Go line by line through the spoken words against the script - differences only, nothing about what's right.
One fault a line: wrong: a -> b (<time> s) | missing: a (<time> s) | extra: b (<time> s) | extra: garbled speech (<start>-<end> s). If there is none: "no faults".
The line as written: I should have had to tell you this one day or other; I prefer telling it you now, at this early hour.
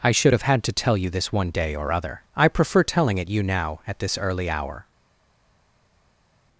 no faults